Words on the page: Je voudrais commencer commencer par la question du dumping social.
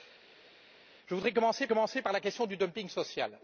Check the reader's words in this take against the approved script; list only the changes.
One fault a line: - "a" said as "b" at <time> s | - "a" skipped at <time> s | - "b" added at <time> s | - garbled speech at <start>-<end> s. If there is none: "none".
none